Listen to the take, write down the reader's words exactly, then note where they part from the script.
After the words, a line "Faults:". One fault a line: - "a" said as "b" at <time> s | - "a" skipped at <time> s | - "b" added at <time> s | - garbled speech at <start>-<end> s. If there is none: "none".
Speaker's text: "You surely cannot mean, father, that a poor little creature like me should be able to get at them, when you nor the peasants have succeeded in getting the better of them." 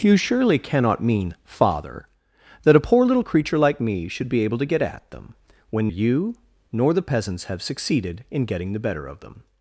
"You surely cannot mean, father, that a poor little creature like me should be able to get at them, when you nor the peasants have succeeded in getting the better of them."
Faults:
none